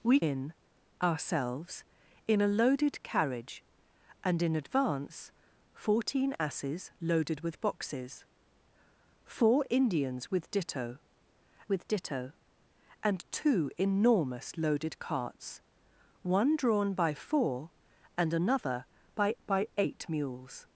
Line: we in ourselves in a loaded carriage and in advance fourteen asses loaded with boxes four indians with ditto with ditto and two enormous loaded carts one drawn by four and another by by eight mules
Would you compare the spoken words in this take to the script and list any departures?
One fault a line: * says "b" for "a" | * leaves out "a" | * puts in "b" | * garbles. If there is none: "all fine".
all fine